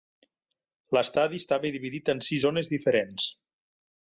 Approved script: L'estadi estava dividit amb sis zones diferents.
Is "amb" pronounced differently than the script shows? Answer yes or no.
yes